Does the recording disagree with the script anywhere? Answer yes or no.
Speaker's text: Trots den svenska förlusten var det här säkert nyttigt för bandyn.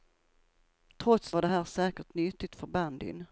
yes